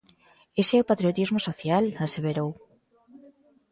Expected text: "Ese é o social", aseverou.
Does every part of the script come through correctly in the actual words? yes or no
no